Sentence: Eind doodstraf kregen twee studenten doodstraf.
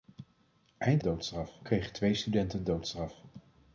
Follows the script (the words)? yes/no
yes